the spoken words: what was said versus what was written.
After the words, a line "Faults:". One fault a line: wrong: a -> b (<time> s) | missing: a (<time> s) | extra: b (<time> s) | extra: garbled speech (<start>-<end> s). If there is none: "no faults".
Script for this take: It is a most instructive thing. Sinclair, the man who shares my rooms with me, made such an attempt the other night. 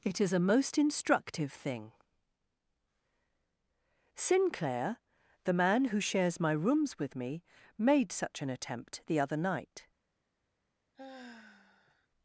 It is a most instructive thing. Sinclair, the man who shares my rooms with me, made such an attempt the other night.
Faults:
no faults